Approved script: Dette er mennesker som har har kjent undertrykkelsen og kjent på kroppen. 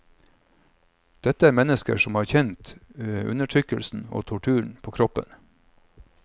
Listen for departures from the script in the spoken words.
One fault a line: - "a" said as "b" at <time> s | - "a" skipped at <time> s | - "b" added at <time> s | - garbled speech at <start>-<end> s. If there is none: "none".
- "har" skipped at 2.3 s
- "kjent" said as "torturen" at 4.3 s